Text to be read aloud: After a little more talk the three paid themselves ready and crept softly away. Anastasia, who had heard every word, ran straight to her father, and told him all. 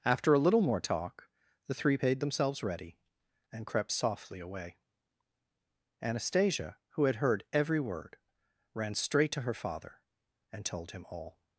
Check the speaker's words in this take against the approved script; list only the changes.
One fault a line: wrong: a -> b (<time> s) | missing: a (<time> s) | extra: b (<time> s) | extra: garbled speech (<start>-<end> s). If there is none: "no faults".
no faults